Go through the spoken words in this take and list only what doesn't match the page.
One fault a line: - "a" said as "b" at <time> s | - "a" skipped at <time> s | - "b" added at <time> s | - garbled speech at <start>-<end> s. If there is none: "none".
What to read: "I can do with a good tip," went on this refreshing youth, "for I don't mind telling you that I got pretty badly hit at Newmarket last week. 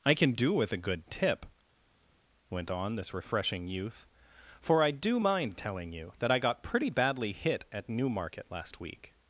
- "don't" said as "do" at 4.9 s